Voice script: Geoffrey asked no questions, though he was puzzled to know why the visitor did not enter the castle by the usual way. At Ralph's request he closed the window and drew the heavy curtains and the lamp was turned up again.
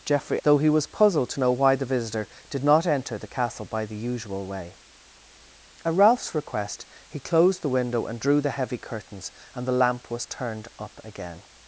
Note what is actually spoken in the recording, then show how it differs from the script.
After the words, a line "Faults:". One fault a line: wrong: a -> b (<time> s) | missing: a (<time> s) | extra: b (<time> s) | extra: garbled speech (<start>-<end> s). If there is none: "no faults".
Geoffrey though he was puzzled to know why the visitor did not enter the castle by the usual way. At Ralph's request he closed the window and drew the heavy curtains and the lamp was turned up again.
Faults:
missing: asked no questions (0.4 s)